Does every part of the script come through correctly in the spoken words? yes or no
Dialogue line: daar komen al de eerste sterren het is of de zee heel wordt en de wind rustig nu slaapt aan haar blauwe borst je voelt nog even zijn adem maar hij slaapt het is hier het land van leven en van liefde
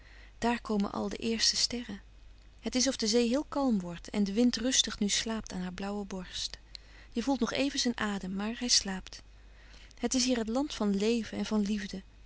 no